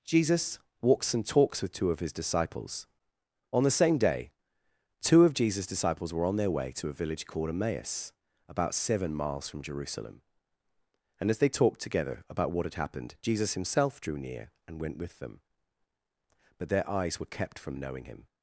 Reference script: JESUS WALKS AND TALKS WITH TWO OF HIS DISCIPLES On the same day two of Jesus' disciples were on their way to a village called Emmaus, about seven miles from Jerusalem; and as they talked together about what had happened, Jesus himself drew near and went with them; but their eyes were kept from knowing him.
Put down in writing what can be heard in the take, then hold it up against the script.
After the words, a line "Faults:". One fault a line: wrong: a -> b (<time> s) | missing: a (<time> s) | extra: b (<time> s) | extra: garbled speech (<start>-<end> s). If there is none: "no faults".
JESUS WALKS AND TALKS WITH TWO OF HIS DISCIPLES On the same day two of Jesus' disciples were on their way to a village called Emmaus, about seven miles from Jerusalem; and as they talked together about what had happened, Jesus himself drew near and went with them; but their eyes were kept from knowing him.
Faults:
no faults